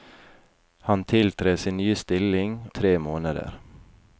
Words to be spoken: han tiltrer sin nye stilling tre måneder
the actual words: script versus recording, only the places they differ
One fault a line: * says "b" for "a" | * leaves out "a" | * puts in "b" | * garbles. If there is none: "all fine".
all fine